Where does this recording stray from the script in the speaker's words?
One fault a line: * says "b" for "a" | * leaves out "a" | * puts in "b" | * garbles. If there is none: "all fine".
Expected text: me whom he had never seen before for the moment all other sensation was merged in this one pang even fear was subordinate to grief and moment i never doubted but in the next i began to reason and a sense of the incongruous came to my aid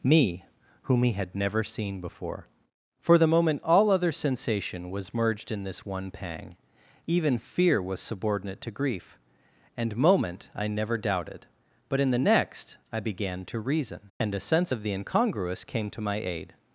all fine